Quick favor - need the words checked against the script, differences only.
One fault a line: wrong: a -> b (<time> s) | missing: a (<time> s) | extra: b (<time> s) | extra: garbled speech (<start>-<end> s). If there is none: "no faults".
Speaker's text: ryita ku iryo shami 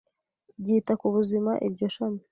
extra: buzima (1.1 s)